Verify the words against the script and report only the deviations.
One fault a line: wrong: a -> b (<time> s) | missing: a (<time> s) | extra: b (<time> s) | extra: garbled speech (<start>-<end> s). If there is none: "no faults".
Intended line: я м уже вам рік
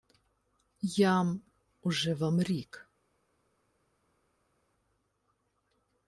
no faults